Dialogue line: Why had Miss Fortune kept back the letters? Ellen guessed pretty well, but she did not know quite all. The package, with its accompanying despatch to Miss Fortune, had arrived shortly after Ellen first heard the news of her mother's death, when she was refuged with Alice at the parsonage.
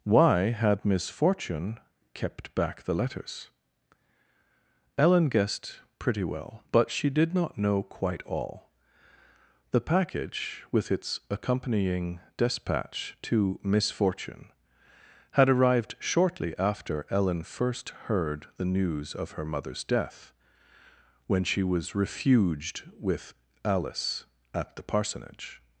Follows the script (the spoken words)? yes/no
yes